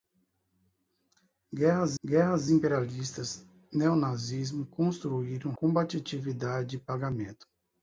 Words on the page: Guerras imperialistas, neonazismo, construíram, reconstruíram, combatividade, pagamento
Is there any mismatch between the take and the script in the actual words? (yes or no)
yes